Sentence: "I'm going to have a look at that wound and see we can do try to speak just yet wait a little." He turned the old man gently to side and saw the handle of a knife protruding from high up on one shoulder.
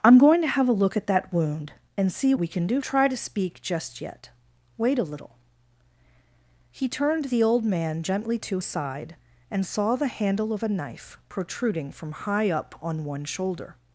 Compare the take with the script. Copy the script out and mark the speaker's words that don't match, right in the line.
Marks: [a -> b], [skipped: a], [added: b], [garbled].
"I'm going to have a look at that wound and see we can do try to speak just yet wait a little." He turned the old man gently to side and saw the handle of a knife protruding from high up on one shoulder.